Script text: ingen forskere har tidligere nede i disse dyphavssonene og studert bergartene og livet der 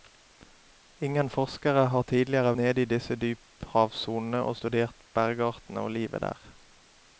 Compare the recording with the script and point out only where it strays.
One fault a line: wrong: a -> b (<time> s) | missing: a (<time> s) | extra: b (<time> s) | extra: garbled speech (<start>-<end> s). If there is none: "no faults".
no faults